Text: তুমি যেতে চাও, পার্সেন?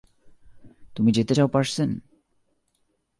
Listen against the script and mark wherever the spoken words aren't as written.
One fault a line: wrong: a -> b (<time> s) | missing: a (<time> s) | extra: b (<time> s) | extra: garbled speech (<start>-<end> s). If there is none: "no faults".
no faults